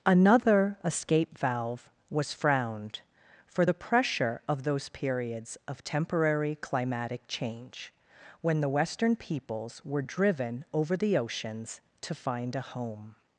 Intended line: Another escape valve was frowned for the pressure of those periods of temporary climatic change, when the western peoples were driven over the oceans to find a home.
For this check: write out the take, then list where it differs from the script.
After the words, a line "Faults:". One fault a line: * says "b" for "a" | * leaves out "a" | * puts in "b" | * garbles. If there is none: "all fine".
Another escape valve was frowned for the pressure of those periods of temporary climatic change, when the western peoples were driven over the oceans to find a home.
Faults:
all fine